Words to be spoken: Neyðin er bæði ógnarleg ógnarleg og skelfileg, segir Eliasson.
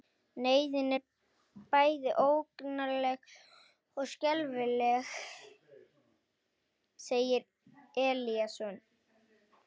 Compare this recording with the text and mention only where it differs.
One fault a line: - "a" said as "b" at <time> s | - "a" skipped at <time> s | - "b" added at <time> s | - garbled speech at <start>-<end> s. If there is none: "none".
- "ógnarleg" skipped at 3.3 s